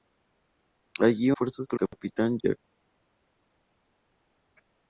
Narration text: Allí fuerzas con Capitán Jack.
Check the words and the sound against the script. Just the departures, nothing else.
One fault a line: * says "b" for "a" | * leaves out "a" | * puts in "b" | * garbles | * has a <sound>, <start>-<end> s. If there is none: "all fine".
all fine